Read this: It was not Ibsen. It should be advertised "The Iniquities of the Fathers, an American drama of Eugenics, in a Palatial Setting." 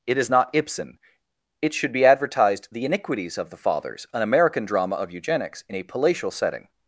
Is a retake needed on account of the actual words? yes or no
yes